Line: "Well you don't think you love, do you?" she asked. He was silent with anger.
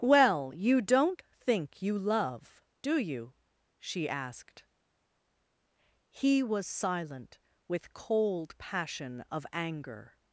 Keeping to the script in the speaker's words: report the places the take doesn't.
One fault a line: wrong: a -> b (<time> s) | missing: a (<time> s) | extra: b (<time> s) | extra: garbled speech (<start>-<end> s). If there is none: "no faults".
extra: cold passion of (7.9 s)